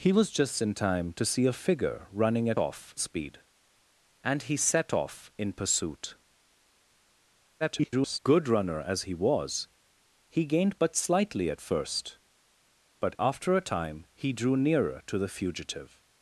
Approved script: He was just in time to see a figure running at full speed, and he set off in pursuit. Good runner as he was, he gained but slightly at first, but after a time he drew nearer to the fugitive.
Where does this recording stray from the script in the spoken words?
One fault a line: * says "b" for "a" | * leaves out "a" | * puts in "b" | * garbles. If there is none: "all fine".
* says "off" for "full"
* garbles